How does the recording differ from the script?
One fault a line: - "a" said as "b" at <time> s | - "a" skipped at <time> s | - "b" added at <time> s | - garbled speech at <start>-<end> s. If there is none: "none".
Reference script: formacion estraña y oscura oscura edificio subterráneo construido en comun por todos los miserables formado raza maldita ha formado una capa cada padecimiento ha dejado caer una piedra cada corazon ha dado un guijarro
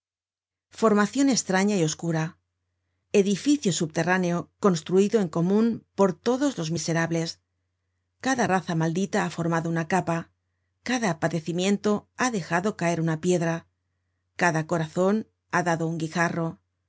- "oscura" skipped at 2.4 s
- "formado" said as "cada" at 8.3 s